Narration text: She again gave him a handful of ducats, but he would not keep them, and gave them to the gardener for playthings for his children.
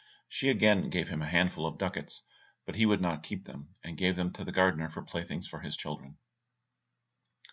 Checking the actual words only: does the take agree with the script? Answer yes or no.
yes